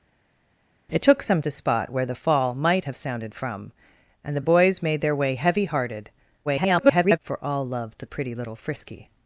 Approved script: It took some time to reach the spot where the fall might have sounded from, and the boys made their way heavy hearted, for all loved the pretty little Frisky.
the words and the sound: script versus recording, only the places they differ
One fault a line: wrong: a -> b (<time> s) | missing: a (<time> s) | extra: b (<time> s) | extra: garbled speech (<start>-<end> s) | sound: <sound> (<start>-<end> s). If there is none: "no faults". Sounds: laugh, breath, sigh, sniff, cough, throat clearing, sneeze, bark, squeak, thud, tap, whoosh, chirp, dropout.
missing: time to reach (1.4 s)
extra: the (4.4 s)
extra: garbled speech (6.4-7.2 s)